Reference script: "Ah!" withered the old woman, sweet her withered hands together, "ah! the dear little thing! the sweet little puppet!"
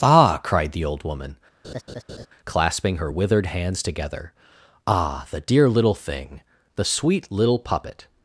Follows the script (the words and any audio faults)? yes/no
no